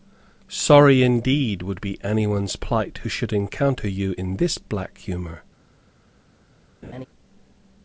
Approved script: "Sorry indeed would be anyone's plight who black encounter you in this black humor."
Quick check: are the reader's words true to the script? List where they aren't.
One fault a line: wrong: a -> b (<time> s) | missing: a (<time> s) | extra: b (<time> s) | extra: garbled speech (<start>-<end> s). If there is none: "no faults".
wrong: black -> should (3.1 s)